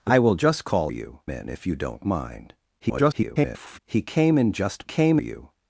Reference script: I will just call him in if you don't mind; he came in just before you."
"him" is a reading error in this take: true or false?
true